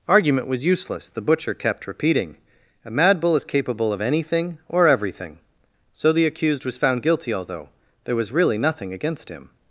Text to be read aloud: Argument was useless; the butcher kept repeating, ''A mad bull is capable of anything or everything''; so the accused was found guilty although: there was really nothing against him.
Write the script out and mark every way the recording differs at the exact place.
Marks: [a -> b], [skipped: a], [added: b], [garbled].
Argument was useless; the butcher kept repeating, ''A mad bull is capable of anything or everything''; so the accused was found guilty although: there was really nothing against him.